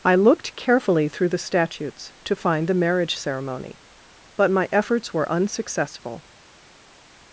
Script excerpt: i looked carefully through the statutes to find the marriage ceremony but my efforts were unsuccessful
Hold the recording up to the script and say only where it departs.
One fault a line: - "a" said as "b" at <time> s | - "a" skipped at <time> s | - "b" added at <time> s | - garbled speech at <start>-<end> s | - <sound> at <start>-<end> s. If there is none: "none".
none